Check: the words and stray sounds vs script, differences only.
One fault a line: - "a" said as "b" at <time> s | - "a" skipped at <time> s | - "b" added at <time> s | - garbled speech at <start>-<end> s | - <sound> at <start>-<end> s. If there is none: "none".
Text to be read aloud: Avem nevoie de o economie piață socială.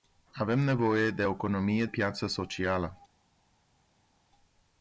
none